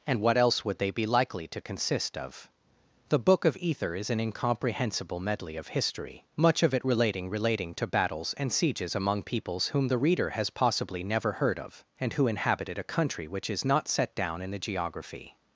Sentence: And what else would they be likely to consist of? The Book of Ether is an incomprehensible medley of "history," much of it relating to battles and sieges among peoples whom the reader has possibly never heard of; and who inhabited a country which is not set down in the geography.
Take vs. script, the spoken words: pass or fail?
fail